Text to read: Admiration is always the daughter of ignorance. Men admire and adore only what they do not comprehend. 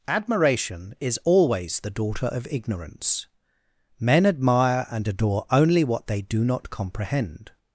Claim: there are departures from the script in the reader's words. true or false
false